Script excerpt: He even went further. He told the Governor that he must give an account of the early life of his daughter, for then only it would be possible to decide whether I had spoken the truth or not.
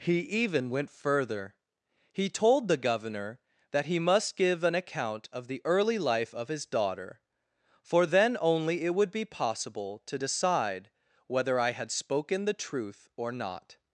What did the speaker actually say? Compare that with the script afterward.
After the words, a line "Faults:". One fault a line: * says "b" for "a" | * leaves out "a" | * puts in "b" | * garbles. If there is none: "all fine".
He even went further. He told the Governor that he must give an account of the early life of his daughter, for then only it would be possible to decide whether I had spoken the truth or not.
Faults:
all fine